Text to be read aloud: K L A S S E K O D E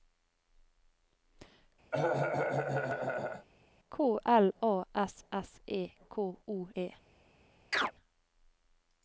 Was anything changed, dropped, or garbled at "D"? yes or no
yes